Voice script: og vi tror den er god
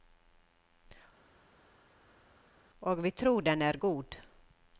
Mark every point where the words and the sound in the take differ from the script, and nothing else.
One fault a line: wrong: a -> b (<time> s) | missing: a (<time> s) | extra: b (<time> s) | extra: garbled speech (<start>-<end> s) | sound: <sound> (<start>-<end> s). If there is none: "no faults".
no faults